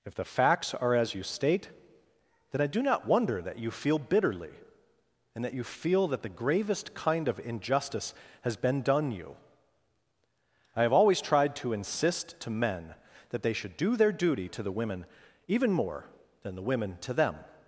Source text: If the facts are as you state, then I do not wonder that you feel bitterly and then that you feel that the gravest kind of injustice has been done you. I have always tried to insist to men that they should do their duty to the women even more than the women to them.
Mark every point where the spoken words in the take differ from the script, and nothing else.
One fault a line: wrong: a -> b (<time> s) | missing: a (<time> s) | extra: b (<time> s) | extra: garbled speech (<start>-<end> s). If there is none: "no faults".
missing: then (5.4 s)